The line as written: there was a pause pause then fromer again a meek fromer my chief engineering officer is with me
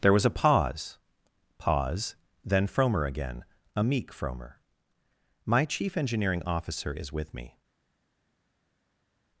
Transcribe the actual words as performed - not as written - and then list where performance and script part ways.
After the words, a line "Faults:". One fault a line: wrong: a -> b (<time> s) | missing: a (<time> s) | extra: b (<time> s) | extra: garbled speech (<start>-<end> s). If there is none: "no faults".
there was a pause pause then fromer again a meek fromer my chief engineering officer is with me
Faults:
no faults